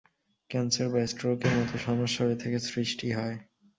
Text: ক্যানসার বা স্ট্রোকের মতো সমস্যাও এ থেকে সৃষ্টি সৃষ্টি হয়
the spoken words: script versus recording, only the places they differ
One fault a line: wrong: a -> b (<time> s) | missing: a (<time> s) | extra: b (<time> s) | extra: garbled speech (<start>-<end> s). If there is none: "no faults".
missing: সৃষ্টি (3.1 s)